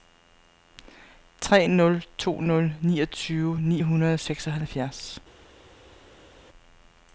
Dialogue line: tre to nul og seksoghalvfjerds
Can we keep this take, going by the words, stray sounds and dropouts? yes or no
no